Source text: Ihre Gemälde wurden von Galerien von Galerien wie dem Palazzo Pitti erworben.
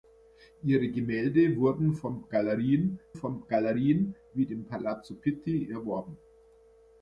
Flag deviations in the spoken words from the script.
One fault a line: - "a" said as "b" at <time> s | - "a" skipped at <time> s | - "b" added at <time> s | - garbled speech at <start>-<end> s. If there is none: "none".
none